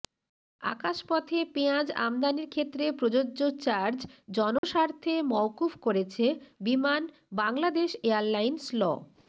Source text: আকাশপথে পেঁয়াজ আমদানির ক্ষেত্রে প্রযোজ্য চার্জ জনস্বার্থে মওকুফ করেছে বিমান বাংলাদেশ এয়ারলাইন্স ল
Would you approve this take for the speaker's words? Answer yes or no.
yes